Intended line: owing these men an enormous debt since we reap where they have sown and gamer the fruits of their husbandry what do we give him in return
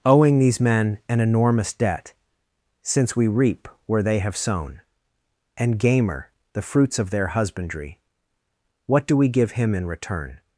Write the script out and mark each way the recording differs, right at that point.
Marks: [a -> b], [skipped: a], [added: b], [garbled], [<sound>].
owing these men an enormous debt since we reap where they have sown and gamer the fruits of their husbandry what do we give him in return